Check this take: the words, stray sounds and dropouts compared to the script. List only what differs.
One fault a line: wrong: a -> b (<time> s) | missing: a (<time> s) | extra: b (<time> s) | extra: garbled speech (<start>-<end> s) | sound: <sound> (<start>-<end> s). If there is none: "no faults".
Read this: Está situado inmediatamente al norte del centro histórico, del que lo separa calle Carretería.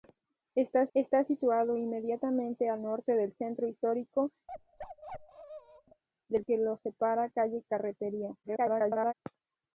extra: está (0.9 s)
sound: bark (4.5-6.0 s)
extra: garbled speech (8.4-9.1 s)